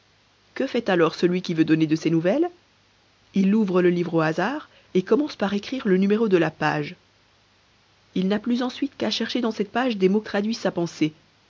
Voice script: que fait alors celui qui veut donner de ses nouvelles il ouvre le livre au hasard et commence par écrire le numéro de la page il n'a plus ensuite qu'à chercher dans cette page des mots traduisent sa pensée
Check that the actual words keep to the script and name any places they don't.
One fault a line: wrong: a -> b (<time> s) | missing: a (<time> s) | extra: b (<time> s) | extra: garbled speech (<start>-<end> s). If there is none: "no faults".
no faults